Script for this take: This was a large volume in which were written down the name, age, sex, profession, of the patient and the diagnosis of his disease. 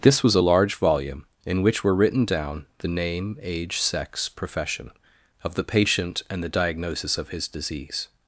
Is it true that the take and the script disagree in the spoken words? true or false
false